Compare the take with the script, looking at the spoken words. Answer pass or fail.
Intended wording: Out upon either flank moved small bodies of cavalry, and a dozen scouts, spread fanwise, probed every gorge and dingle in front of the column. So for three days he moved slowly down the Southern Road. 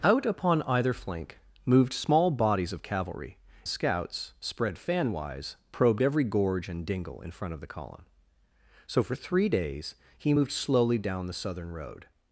fail